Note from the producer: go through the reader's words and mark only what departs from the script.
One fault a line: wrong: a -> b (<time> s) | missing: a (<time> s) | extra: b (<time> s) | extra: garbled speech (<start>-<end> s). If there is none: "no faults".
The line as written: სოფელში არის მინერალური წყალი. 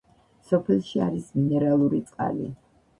no faults